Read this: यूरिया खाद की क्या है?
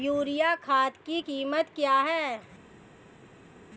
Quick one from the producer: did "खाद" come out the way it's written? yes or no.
yes